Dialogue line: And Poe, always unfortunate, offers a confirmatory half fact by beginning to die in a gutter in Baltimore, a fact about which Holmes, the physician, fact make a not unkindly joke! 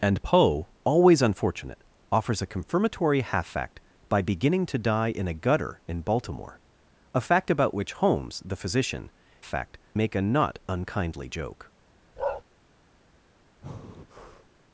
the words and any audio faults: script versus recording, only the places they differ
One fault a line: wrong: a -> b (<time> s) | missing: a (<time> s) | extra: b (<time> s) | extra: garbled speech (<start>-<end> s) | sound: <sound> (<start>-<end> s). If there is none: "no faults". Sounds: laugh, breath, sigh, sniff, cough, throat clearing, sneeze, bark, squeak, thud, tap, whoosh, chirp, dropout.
sound: bark (12.2-12.4 s)
sound: breath (13.6-14.5 s)